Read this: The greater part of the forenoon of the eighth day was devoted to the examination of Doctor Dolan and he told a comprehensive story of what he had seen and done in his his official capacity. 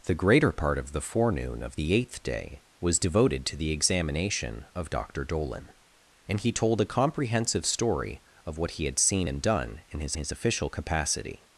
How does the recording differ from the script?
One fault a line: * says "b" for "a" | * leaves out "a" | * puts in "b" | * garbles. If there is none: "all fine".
all fine